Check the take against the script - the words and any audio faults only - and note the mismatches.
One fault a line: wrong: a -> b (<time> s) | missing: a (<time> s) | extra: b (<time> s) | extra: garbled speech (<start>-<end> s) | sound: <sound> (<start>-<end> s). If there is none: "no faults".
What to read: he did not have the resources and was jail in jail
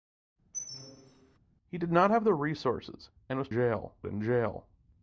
sound: squeak (0.5-1.4 s)